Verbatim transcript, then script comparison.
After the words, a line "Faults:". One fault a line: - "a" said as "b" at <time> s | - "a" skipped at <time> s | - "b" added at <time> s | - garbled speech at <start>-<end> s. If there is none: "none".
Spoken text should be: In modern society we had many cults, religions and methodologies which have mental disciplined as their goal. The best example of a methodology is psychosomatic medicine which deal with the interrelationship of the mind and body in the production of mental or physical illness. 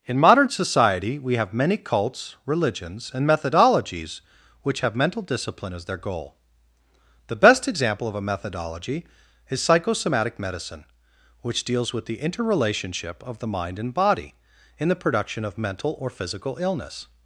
In modern society we have many cults, religions and methodologies which have mental discipline as their goal. The best example of a methodology is psychosomatic medicine which deals with the interrelationship of the mind and body in the production of mental or physical illness.
Faults:
- "had" said as "have" at 1.4 s
- "disciplined" said as "discipline" at 5.2 s
- "deal" said as "deals" at 11.6 s